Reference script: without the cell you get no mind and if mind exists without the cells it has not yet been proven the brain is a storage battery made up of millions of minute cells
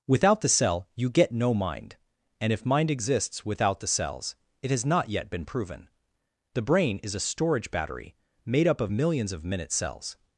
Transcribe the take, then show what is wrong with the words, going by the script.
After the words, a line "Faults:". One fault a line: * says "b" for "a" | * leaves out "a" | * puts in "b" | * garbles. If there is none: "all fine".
without the cell you get no mind and if mind exists without the cells it has not yet been proven the brain is a storage battery made up of millions of minute cells
Faults:
all fine